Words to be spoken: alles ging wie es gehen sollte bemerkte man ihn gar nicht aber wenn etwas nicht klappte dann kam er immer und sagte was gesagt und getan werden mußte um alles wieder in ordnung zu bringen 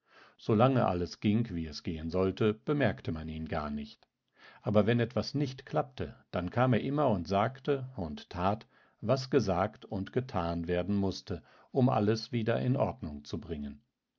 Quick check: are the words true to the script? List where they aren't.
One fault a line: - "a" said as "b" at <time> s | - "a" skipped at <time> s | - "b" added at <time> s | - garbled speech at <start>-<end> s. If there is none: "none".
- "und tat" added at 8.0 s